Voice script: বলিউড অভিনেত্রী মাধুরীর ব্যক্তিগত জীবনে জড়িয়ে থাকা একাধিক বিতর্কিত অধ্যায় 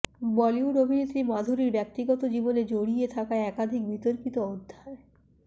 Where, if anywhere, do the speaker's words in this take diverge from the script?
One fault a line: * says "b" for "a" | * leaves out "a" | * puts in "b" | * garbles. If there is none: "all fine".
all fine